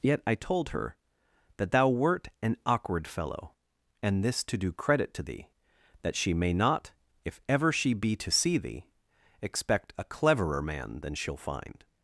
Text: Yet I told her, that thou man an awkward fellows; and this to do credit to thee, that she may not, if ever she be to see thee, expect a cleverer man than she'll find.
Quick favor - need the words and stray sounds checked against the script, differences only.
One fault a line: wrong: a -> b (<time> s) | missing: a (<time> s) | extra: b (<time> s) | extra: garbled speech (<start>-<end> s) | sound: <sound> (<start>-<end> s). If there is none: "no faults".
wrong: man -> wert (1.9 s)
wrong: fellows -> fellow (3.1 s)